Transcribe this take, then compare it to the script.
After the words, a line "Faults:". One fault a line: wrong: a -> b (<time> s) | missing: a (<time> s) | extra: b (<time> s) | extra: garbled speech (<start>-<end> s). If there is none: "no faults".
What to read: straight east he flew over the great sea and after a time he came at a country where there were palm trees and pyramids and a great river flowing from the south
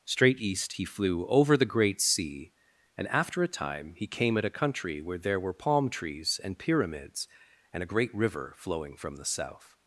straight east he flew over the great sea and after a time he came at a country where there were palm trees and pyramids and a great river flowing from the south
Faults:
no faults